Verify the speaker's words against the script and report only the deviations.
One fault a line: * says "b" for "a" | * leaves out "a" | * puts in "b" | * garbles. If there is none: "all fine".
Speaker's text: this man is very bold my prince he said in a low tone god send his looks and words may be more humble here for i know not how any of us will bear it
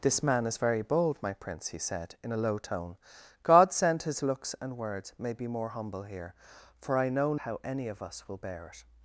* leaves out "not"